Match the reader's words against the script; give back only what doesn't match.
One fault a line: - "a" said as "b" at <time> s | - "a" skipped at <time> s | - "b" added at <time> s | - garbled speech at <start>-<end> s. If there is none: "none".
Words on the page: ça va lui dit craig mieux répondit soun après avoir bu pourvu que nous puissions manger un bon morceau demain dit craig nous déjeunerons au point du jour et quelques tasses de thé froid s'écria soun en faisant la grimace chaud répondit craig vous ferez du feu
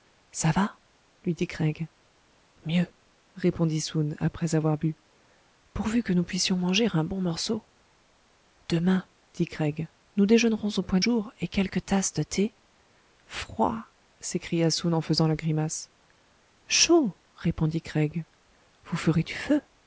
- "du" skipped at 11.0 s